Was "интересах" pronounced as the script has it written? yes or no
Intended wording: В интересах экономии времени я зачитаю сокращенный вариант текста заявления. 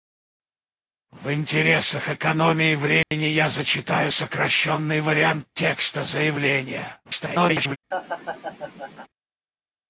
yes